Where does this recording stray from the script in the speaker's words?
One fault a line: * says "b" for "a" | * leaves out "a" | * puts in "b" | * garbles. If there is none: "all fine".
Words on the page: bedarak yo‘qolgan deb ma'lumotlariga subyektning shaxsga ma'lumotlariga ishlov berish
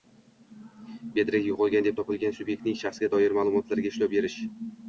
* says "topilgan" for "ma'lumotlariga"
* puts in "doir"